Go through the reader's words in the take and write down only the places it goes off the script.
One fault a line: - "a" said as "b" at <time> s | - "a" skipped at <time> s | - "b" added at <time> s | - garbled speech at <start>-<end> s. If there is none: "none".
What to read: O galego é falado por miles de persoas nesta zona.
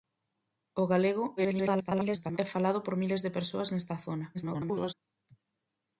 - garbled speech at 1.4-2.4 s
- garbled speech at 4.3-4.9 s